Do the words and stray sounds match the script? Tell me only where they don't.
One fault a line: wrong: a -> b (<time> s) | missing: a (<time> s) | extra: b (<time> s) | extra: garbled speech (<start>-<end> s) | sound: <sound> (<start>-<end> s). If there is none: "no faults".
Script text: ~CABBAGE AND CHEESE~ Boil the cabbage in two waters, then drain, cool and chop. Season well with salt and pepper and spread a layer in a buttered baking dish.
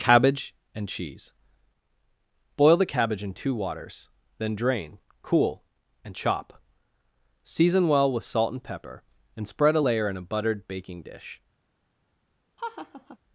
sound: laugh (12.6-13.2 s)